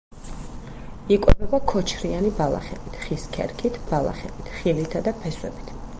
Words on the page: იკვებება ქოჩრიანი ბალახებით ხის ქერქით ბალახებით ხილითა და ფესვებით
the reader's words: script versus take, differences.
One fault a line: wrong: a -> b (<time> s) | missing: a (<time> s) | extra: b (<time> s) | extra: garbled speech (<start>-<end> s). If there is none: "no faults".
no faults